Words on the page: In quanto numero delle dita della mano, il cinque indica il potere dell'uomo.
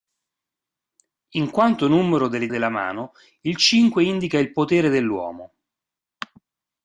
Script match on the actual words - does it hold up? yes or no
no